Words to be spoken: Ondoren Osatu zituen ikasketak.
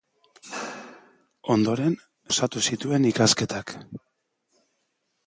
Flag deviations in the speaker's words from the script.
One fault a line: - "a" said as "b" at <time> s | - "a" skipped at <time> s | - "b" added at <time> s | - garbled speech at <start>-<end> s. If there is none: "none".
none